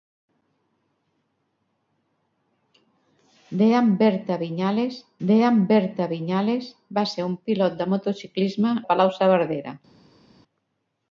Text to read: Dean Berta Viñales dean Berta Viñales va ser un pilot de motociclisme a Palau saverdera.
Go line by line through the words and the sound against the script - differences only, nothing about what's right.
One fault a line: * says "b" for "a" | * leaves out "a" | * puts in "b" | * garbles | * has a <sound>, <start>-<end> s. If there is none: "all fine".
all fine